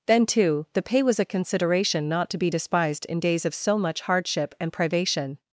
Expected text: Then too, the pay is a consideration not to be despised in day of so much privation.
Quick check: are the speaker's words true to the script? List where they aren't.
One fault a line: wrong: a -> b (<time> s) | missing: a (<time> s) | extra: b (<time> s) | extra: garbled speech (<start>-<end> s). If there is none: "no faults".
wrong: is -> was (1.0 s)
wrong: day -> days (3.2 s)
extra: hardship and (4.0 s)